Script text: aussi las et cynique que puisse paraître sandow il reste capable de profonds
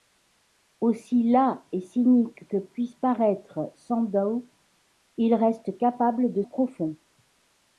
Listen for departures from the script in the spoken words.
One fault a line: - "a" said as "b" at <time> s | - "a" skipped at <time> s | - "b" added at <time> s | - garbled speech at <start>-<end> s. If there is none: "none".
none